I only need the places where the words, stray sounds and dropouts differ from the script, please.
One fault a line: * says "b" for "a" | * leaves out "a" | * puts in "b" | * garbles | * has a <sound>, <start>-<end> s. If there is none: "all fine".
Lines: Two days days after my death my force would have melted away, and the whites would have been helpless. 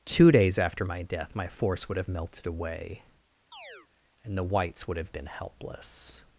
* leaves out "days"
* has a chirp, 3.5-3.9 s